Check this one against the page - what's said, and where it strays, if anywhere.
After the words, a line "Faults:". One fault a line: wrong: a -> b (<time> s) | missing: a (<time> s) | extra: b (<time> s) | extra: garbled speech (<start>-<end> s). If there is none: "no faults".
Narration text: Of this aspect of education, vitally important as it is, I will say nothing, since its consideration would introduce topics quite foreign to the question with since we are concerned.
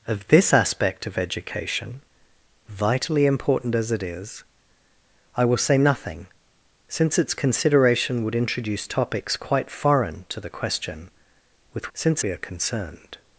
Of this aspect of education, vitally important as it is, I will say nothing, since its consideration would introduce topics quite foreign to the question with since we are concerned.
Faults:
no faults